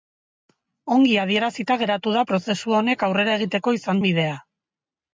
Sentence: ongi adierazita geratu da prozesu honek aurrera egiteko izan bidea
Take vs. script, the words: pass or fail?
pass